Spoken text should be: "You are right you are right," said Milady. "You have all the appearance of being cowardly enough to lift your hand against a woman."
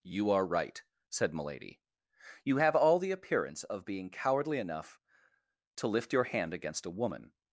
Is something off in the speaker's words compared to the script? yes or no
yes